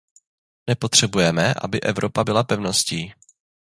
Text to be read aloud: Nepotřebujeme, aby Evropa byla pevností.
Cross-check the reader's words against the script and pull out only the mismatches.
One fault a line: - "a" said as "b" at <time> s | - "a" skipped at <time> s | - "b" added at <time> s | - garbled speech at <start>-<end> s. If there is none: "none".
none